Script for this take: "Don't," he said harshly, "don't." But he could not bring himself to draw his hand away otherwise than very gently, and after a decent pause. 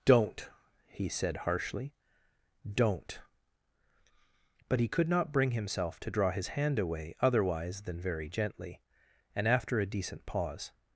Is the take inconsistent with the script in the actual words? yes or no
no